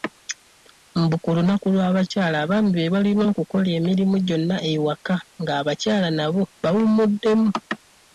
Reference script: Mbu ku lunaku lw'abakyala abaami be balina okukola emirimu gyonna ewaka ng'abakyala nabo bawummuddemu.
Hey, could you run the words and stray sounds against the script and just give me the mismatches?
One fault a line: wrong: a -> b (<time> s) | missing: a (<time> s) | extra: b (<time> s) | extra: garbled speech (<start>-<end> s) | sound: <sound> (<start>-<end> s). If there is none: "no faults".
no faults